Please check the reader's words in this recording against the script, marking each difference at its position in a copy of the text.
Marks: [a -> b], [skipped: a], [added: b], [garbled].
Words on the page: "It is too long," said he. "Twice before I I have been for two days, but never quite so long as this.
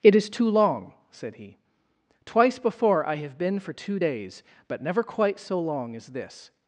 "It is too long," said he. "Twice before I [skipped: I] have been for two days, but never quite so long as this.